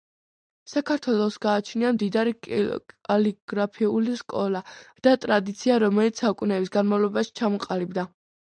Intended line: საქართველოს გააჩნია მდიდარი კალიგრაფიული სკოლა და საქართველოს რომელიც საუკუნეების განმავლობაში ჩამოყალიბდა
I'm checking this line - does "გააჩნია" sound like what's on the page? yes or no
yes